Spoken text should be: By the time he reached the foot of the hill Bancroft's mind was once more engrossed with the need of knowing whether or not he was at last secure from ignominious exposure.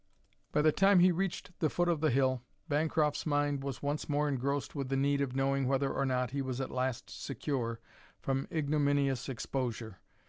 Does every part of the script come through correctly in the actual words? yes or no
yes